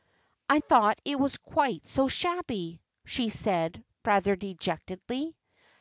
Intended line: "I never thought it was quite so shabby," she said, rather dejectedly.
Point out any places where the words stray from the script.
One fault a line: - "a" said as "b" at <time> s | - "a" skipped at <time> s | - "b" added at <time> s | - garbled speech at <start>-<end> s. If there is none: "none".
- "never" skipped at 0.6 s